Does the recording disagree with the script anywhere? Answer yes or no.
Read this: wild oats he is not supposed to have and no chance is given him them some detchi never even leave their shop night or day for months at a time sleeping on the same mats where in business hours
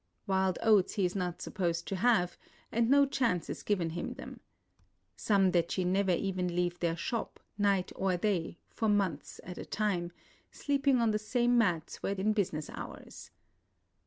no